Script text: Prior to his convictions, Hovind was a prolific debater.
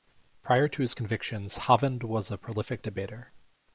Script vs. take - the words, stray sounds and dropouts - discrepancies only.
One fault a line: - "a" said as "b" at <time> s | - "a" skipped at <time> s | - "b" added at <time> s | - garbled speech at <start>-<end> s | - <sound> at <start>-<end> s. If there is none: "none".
none